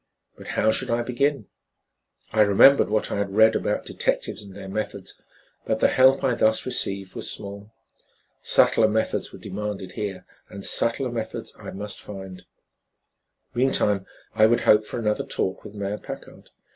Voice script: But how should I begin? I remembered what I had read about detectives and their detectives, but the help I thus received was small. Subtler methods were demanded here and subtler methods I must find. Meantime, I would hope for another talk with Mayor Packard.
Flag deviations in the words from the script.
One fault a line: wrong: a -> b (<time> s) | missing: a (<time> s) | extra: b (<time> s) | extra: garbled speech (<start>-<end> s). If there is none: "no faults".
wrong: detectives -> methods (4.7 s)